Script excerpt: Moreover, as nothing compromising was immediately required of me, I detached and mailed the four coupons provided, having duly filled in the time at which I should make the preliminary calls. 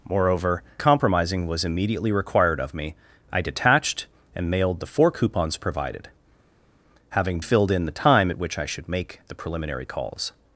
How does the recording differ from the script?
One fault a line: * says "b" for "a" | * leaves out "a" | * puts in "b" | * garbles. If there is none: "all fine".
* leaves out "as nothing"
* leaves out "duly"